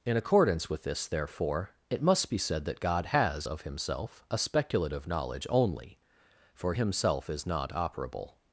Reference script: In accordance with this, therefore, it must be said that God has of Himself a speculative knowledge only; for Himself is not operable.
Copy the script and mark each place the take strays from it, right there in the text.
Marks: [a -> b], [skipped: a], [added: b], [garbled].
In accordance with this, therefore, it must be said that God has of Himself a speculative knowledge only; for Himself is not operable.